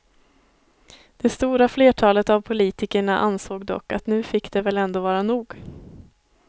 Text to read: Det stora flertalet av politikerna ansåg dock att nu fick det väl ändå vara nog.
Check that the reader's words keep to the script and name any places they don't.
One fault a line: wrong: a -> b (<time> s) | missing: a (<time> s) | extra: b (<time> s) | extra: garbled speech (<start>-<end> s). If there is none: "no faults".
no faults